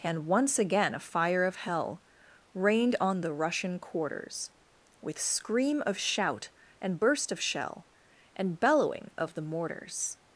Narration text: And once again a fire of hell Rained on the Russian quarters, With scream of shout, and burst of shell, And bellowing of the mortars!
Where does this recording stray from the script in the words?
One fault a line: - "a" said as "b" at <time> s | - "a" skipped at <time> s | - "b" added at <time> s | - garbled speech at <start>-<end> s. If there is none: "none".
none